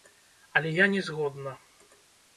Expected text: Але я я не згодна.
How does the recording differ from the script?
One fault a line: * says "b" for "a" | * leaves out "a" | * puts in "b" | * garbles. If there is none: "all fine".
* leaves out "я"